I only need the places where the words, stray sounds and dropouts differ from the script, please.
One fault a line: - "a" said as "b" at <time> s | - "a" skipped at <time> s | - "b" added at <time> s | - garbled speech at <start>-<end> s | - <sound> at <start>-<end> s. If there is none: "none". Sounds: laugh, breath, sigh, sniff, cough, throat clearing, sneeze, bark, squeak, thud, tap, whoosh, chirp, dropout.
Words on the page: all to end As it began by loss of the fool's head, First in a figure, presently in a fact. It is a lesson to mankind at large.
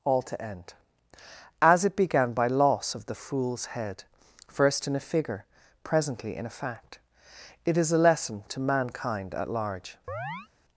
- chirp at 10.1-10.5 s